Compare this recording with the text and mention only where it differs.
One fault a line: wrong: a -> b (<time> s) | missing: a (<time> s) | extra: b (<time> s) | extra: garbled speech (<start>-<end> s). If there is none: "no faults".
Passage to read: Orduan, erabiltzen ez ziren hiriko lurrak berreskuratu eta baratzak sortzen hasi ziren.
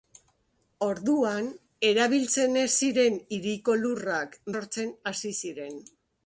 missing: berreskuratu eta baratzak (4.3 s)